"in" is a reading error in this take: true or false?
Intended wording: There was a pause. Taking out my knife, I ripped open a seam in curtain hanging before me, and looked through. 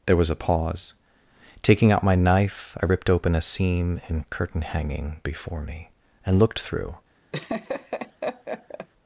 false